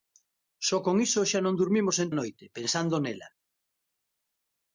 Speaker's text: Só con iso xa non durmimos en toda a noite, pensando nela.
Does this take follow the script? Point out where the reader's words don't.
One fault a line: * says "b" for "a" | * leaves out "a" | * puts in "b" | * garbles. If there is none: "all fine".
* leaves out "toda"